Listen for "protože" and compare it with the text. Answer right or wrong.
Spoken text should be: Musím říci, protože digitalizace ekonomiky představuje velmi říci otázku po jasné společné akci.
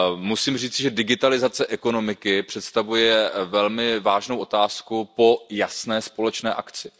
wrong